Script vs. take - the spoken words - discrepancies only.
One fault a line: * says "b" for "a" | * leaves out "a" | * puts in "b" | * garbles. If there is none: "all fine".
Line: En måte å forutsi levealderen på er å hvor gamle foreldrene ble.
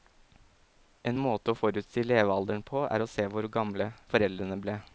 * puts in "se"